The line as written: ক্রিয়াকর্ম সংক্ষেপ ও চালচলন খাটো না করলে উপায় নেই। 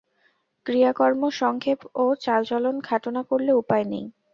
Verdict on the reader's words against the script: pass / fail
pass